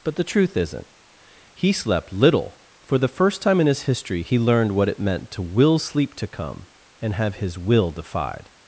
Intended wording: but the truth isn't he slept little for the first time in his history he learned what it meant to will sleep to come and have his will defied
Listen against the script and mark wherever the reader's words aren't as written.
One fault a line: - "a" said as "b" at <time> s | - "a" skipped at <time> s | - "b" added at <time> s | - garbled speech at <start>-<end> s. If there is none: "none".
none